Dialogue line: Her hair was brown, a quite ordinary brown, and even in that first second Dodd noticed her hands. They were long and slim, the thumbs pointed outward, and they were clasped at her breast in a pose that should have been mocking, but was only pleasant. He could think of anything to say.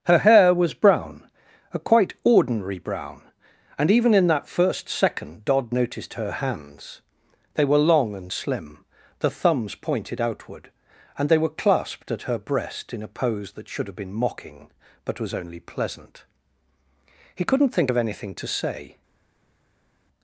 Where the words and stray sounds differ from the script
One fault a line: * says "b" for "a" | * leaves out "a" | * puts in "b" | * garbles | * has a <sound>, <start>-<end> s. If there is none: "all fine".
* says "couldn't" for "could"